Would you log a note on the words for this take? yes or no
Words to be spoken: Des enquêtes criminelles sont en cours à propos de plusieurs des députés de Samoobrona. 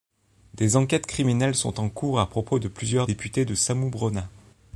yes